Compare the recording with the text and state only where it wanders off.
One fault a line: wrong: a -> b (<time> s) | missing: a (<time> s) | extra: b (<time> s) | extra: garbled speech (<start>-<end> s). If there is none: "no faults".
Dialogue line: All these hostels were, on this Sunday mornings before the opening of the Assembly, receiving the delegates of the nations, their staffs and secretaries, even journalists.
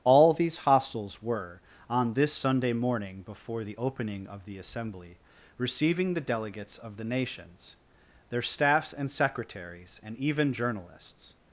wrong: mornings -> morning (2.7 s)
extra: and (10.0 s)